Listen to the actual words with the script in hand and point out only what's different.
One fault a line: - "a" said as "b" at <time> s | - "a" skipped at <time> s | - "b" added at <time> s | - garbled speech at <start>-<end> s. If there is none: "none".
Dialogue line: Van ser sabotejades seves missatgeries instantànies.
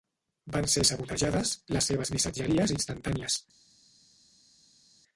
- "les" added at 1.8 s